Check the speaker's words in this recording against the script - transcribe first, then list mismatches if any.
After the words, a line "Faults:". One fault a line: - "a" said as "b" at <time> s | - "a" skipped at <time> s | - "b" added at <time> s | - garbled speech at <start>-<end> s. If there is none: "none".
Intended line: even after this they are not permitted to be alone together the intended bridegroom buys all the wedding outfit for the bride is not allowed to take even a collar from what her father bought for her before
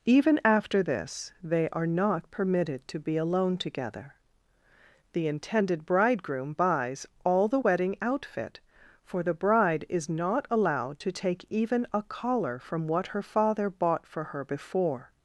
even after this they are not permitted to be alone together the intended bridegroom buys all the wedding outfit for the bride is not allowed to take even a collar from what her father bought for her before
Faults:
none